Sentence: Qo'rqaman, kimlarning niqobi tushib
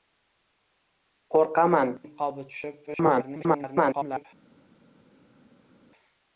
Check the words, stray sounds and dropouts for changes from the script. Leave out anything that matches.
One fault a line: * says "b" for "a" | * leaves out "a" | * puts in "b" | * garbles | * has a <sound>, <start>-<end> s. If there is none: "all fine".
* leaves out "kimlarning"
* garbles